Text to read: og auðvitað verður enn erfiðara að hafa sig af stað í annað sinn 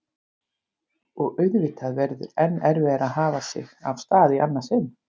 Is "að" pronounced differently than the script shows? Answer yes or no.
no